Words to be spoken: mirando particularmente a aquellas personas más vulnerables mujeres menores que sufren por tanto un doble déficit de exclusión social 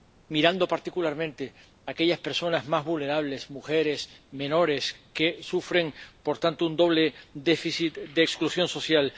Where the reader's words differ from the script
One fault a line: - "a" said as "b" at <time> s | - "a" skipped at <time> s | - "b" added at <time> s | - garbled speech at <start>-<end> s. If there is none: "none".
none